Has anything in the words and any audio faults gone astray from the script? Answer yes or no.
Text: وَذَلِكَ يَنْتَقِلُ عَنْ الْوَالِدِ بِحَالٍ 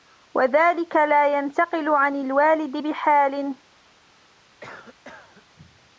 yes